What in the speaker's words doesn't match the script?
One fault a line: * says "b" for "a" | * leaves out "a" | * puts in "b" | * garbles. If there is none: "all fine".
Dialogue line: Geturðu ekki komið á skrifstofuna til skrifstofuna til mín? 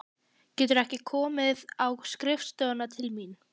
* leaves out "skrifstofuna til"